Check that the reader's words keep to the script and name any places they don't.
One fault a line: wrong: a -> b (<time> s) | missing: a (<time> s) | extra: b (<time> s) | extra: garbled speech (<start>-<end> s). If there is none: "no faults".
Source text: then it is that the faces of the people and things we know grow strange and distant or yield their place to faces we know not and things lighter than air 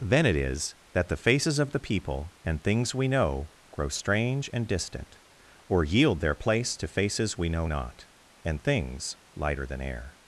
no faults